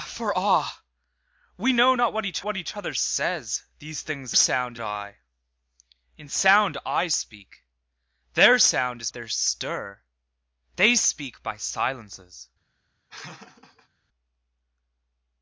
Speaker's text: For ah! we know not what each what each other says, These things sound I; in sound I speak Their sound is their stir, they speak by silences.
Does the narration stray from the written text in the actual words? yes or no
no